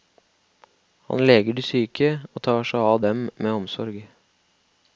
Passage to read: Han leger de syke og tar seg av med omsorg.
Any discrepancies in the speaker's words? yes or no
yes